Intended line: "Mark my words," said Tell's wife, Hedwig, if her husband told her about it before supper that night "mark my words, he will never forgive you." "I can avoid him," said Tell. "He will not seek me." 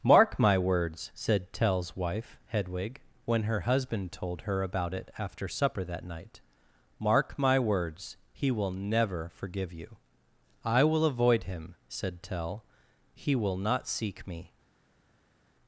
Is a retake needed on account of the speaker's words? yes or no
yes